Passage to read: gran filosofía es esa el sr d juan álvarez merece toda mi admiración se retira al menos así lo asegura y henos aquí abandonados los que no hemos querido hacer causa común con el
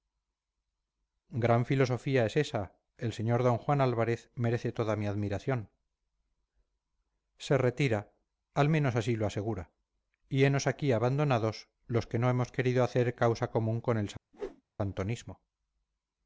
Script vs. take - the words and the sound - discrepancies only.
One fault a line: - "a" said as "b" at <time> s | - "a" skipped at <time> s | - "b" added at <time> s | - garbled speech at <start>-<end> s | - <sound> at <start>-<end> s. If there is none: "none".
- whoosh at 14.3-14.6 s